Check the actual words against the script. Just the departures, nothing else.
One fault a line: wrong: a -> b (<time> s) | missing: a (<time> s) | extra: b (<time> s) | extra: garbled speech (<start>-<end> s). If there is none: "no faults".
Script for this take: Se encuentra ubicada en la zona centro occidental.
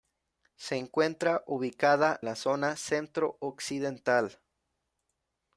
missing: en (2.2 s)